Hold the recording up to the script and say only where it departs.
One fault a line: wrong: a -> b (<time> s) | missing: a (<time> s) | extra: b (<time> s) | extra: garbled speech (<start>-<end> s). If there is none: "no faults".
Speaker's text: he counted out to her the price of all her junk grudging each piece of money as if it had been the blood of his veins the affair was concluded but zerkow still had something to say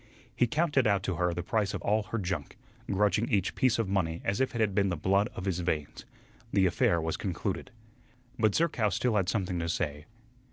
no faults